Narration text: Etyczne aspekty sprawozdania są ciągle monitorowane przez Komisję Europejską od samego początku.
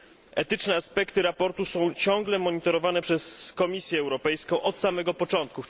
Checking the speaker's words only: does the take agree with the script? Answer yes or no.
yes